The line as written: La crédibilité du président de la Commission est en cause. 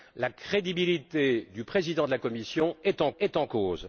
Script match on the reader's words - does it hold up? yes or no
no